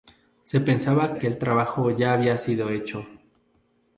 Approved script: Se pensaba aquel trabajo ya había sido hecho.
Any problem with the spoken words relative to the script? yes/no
no